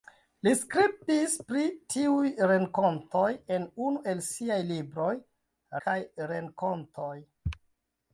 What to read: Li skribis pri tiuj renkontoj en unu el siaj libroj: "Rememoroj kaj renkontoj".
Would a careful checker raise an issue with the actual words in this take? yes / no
yes